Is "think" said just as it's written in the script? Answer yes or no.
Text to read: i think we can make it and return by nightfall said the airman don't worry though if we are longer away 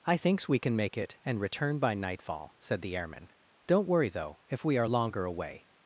no